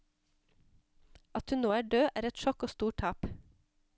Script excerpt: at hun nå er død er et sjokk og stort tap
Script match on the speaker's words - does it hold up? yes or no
yes